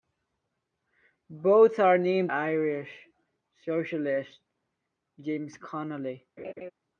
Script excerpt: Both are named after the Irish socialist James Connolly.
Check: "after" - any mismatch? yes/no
yes